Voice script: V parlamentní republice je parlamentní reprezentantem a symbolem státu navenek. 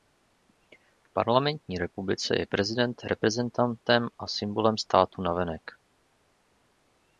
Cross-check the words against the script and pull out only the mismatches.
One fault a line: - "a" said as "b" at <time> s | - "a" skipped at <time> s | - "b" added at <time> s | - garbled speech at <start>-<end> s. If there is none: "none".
- "parlamentní" said as "prezident" at 2.5 s